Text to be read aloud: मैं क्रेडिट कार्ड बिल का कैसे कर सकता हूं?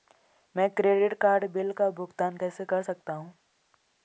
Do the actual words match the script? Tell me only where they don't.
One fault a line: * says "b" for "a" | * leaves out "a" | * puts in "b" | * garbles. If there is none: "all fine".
* puts in "भुगतान"